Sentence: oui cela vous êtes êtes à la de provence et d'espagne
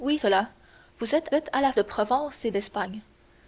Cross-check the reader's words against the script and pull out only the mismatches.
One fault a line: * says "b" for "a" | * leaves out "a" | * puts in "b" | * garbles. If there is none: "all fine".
all fine